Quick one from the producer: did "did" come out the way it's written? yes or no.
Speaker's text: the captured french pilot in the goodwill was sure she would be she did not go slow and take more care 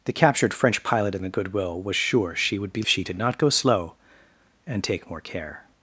yes